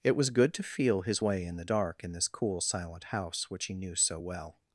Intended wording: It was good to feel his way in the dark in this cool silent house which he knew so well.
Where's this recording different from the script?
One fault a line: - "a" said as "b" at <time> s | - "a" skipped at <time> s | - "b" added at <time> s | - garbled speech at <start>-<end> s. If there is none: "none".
none